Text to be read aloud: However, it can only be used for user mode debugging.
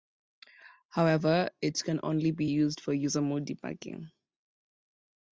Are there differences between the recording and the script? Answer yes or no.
no